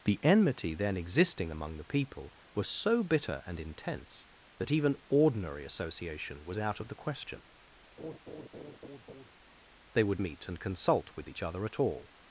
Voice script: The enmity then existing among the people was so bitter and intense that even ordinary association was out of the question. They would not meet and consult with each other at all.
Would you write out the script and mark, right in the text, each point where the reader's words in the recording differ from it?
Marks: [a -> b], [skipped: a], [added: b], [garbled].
The enmity then existing among the people was so bitter and intense that even ordinary association was out of the question. They would [skipped: not] meet and consult with each other at all.